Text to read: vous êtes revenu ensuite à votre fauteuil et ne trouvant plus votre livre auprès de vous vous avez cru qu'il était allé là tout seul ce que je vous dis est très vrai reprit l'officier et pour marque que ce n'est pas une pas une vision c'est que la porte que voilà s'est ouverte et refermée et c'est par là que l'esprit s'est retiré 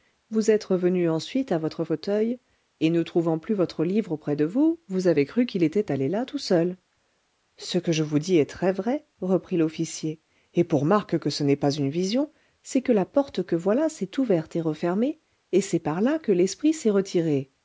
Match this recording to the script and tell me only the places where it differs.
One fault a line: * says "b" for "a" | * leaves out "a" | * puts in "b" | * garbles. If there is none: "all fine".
* leaves out "pas une"